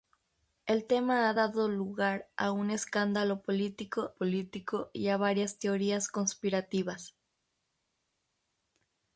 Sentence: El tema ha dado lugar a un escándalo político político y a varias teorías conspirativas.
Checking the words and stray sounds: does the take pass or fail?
pass